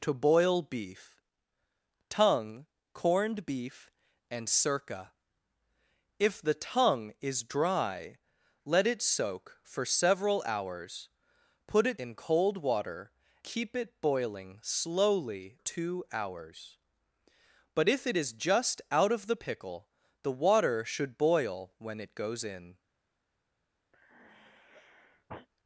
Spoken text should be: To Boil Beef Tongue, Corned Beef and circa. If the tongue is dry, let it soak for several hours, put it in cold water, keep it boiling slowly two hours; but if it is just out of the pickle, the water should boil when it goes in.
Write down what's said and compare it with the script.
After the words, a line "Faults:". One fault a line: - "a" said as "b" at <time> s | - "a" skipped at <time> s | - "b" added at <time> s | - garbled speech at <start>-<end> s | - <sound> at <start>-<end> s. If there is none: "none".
To Boil Beef Tongue, Corned Beef and circa. If the tongue is dry, let it soak for several hours, put it in cold water, keep it boiling slowly two hours; but if it is just out of the pickle, the water should boil when it goes in.
Faults:
- sigh at 23.9-25.5 s